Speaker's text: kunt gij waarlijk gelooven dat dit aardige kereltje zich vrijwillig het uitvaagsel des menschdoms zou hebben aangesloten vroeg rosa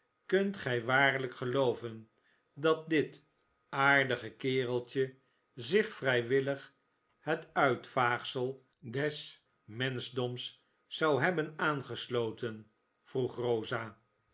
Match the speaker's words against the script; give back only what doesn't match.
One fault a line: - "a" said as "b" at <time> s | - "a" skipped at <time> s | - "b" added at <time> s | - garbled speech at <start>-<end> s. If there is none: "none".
none